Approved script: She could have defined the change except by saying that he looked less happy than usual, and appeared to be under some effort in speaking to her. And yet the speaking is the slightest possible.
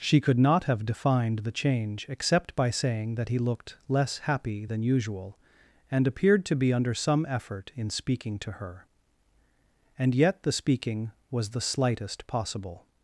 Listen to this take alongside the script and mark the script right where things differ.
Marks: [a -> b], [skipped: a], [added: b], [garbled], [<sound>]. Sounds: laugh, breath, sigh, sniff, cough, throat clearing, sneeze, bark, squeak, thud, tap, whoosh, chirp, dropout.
She could [added: not] have defined the change except by saying that he looked less happy than usual, and appeared to be under some effort in speaking to her. And yet the speaking [is -> was] the slightest possible.